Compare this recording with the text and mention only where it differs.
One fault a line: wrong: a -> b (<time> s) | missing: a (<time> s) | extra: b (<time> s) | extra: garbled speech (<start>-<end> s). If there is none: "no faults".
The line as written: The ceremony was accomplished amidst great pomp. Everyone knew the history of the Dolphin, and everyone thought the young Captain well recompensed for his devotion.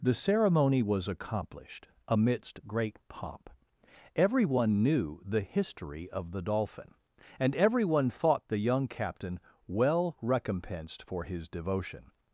no faults